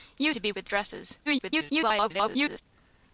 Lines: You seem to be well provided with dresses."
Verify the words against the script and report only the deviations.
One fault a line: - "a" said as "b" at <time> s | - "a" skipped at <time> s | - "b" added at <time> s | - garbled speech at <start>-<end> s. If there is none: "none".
- "seem" skipped at 0.3 s
- "well provided" skipped at 0.5 s
- garbled speech at 1.3-2.6 s